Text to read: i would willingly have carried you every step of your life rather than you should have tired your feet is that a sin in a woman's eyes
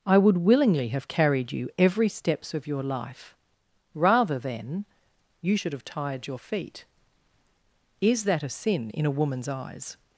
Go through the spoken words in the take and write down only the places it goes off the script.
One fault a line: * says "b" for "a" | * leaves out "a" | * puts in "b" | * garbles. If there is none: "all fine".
* says "steps" for "step"